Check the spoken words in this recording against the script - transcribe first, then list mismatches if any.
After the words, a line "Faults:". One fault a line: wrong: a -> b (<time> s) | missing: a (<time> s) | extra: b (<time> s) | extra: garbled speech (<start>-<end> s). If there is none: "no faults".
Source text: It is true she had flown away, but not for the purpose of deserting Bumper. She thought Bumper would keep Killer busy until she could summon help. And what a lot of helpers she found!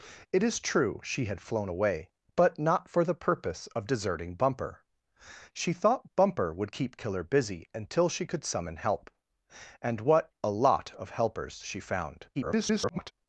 It is true she had flown away, but not for the purpose of deserting Bumper. She thought Bumper would keep Killer busy until she could summon help. And what a lot of helpers she found! [garbled]
Faults:
extra: garbled speech (12.3-13.1 s)